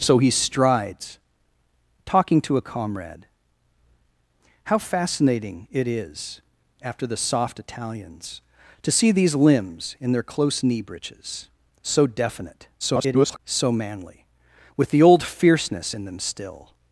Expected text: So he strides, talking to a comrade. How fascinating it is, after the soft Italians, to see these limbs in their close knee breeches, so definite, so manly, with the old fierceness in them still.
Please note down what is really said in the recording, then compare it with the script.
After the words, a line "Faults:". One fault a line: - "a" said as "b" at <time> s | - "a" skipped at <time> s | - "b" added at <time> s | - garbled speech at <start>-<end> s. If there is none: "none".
So he strides, talking to a comrade. How fascinating it is, after the soft Italians, to see these limbs in their close knee breeches, so definite, [garbled] so manly, with the old fierceness in them still.
Faults:
- garbled speech at 12.8-13.4 s